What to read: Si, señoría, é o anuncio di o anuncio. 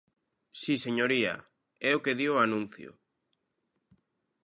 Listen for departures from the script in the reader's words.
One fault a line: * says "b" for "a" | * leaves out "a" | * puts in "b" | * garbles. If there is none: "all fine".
* says "que" for "anuncio"